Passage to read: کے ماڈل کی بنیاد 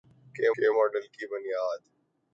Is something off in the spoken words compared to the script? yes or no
yes